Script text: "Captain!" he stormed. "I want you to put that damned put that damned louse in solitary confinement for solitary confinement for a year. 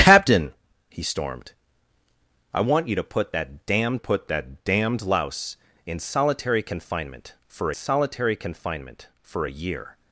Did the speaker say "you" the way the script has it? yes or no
yes